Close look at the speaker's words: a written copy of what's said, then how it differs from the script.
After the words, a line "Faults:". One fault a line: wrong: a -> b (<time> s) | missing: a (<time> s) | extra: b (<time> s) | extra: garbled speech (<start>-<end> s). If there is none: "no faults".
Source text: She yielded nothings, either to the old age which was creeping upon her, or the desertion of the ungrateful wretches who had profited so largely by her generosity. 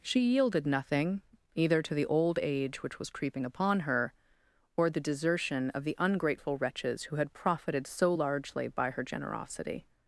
She yielded nothing, either to the old age which was creeping upon her, or the desertion of the ungrateful wretches who had profited so largely by her generosity.
Faults:
wrong: nothings -> nothing (0.7 s)